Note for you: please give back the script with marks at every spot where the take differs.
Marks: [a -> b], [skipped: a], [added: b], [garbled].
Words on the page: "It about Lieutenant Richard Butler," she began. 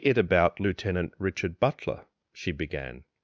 "It about Lieutenant Richard Butler," she began.